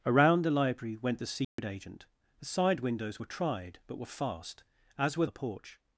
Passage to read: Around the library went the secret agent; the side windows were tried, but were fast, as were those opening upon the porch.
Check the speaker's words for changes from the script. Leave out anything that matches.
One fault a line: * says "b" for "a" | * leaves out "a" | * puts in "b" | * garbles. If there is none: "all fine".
* leaves out "those opening upon"